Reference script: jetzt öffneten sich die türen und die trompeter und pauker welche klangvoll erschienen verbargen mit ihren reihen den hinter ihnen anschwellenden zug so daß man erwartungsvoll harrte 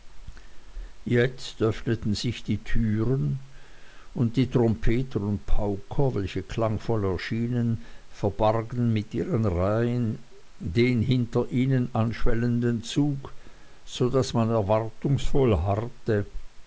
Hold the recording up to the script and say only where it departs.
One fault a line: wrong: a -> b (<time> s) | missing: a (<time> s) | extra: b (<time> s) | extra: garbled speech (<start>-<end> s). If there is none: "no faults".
no faults